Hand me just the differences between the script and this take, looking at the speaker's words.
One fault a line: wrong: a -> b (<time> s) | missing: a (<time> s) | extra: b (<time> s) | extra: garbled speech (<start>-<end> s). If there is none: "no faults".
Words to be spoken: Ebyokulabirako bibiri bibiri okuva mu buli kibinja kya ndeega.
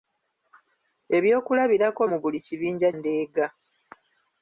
missing: bibiri bibiri okuva (2.0 s)
missing: kya (2.9 s)